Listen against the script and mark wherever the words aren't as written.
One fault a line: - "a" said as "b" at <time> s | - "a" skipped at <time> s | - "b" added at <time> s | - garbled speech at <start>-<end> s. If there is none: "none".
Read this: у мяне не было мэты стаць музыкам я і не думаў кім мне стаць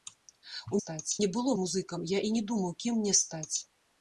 - "мяне" said as "стаць" at 0.8 s
- "мэты стаць" skipped at 1.5 s